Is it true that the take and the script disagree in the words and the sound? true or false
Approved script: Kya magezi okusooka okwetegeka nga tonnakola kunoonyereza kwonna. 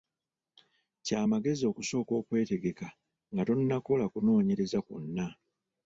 false